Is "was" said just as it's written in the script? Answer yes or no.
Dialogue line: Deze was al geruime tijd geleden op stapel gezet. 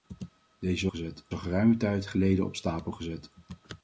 no